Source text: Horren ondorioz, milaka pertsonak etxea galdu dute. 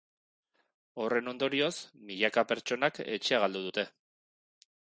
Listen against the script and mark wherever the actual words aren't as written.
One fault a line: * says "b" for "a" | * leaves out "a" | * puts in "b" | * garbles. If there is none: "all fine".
all fine